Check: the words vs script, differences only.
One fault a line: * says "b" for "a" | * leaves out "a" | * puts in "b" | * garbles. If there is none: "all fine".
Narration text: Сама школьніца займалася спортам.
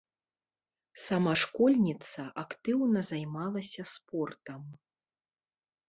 * puts in "актыўна"